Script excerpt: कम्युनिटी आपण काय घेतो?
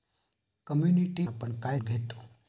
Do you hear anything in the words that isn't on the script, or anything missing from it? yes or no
no